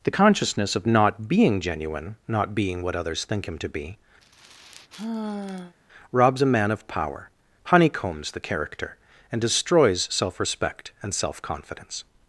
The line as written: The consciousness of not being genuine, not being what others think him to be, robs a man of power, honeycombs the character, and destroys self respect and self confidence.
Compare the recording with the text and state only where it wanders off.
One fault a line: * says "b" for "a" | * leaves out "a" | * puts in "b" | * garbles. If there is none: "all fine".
all fine